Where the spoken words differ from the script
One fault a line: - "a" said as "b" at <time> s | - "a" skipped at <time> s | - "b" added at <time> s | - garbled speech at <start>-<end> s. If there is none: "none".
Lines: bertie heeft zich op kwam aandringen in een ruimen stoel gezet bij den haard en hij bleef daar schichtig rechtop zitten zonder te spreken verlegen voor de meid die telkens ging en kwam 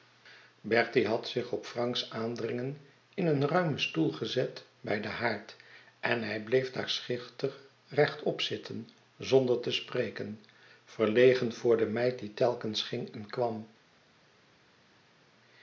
- "heeft" said as "had" at 1.1 s
- "kwam" said as "franks" at 1.6 s